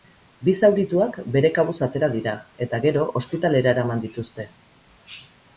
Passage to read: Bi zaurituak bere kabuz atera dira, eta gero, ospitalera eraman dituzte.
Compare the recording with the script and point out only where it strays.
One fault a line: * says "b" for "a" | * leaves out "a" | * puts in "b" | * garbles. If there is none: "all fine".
all fine